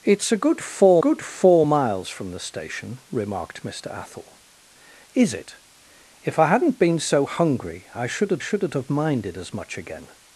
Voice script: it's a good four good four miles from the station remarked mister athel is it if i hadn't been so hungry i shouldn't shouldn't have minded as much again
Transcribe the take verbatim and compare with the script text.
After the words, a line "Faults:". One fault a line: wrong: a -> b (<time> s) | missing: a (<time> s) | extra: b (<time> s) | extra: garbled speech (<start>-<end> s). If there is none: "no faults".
it's a good four good four miles from the station remarked mister athel is it if i hadn't been so hungry i shouldn't shouldn't have minded as much again
Faults:
no faults